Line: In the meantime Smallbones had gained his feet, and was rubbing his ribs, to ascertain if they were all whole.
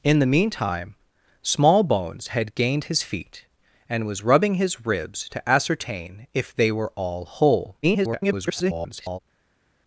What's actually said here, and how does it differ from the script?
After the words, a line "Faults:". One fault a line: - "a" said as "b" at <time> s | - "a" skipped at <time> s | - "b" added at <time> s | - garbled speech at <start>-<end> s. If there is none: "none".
In the meantime Smallbones had gained his feet, and was rubbing his ribs, to ascertain if they were all whole. [garbled]
Faults:
- garbled speech at 7.8-9.2 s